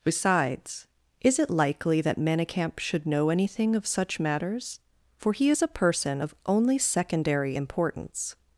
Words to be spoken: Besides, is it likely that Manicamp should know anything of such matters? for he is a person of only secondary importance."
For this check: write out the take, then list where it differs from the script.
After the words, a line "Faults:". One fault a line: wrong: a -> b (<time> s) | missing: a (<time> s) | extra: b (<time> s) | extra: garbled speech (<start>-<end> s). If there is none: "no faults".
Besides, is it likely that Manicamp should know anything of such matters? for he is a person of only secondary importance."
Faults:
no faults